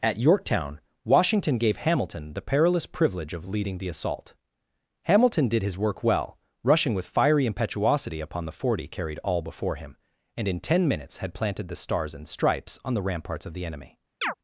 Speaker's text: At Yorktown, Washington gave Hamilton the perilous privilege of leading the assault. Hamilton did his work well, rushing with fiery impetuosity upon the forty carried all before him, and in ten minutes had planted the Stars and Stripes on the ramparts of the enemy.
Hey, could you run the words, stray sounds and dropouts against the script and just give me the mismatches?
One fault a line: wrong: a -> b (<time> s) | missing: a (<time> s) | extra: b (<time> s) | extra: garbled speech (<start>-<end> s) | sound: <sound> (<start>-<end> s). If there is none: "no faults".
sound: chirp (14.2-14.3 s)